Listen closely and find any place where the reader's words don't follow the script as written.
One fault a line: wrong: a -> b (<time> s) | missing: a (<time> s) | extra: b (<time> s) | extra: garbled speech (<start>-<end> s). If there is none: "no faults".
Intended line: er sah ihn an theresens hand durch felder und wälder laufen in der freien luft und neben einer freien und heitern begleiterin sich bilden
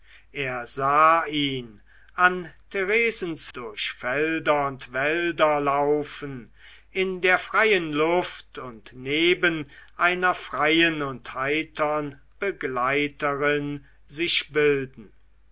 missing: hand (3.5 s)